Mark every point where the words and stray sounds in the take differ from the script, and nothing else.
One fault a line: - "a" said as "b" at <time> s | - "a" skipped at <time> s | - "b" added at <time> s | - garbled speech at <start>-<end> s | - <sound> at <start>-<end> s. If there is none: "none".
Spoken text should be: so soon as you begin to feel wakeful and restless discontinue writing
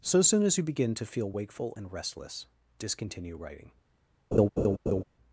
- laugh at 4.3-5.0 s